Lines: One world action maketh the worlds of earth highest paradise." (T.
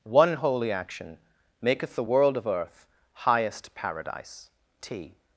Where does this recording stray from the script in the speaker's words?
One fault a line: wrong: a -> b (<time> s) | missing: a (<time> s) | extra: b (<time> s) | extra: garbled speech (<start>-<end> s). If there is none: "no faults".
wrong: world -> holy (0.3 s)
wrong: worlds -> world (2.0 s)